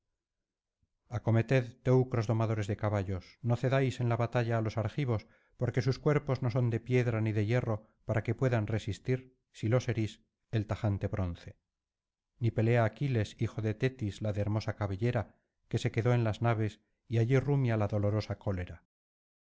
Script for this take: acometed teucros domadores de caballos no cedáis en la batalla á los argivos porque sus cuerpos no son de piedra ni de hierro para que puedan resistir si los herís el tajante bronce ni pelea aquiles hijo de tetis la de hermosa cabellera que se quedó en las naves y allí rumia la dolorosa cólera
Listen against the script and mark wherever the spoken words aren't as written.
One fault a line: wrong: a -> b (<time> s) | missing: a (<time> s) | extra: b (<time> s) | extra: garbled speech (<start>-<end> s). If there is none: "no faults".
no faults